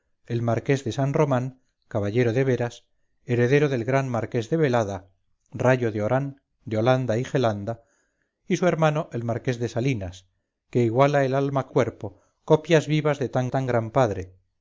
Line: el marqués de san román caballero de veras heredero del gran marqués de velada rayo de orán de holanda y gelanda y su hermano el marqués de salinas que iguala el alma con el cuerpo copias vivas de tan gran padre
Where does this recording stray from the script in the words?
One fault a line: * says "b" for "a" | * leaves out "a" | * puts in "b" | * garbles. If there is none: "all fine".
* leaves out "con el"
* puts in "tan"